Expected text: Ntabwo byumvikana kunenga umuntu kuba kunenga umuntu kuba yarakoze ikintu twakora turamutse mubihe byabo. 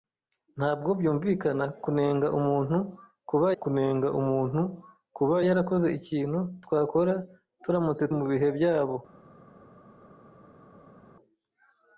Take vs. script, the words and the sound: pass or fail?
pass